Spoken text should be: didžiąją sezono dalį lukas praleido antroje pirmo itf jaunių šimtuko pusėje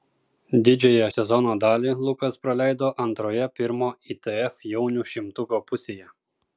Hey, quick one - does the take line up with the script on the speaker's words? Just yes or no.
yes